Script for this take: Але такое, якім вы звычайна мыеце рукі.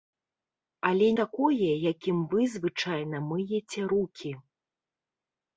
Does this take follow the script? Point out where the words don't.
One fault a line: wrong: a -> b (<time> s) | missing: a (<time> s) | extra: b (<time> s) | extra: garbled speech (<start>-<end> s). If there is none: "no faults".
no faults